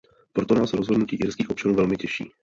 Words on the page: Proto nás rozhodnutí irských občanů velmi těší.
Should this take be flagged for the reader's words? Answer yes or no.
no